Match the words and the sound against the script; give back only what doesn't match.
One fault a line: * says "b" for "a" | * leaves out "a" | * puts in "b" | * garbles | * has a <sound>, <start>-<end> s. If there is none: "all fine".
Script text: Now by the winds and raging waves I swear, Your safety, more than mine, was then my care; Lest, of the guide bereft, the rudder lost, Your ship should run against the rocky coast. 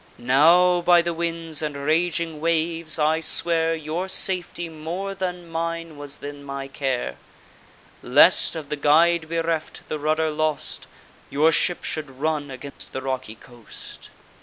* has a dropout, 12.7-12.8 s